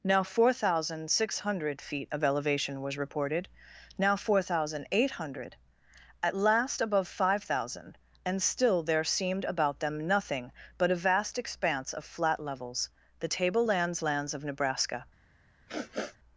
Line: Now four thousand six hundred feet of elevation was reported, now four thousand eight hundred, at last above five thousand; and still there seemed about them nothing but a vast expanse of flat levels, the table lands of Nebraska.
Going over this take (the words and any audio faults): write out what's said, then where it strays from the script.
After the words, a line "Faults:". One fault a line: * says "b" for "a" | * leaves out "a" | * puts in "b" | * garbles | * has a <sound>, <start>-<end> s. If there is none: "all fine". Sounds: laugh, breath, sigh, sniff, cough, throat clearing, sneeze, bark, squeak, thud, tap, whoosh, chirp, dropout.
Now four thousand six hundred feet of elevation was reported, now four thousand eight hundred, at last above five thousand; and still there seemed about them nothing but a vast expanse of flat levels, the table lands lands of Nebraska.
Faults:
* puts in "lands"
* has a sniff, 15.7-16.2 s